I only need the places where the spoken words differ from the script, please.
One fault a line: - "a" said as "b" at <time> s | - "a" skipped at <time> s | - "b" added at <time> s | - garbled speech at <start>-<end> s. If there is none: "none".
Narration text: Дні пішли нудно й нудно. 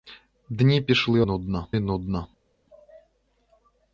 none